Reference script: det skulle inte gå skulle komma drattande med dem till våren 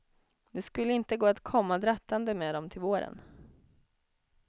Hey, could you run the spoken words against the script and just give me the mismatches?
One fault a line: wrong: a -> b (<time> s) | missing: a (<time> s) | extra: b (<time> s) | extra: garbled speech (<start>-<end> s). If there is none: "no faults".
wrong: skulle -> att (1.2 s)